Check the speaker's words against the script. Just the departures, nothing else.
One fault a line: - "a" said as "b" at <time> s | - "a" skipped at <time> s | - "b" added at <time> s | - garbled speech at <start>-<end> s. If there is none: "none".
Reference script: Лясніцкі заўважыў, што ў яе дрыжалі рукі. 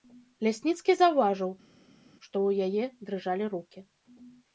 none